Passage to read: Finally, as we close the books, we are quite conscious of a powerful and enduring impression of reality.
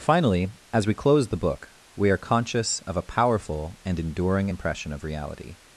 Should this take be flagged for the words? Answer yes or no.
yes